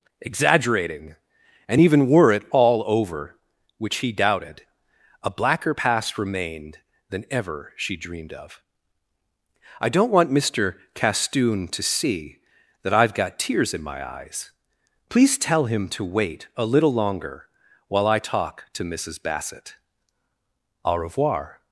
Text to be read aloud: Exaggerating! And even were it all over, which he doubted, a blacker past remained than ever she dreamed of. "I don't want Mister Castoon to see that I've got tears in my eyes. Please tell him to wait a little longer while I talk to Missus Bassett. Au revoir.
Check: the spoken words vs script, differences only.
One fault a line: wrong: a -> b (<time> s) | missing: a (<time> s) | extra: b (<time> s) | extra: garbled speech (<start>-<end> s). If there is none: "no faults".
no faults